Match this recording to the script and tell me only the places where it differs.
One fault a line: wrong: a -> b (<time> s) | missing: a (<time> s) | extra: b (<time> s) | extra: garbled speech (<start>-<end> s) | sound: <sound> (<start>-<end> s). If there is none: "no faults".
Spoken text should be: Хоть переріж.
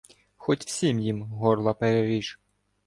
extra: всім їм горла (0.6 s)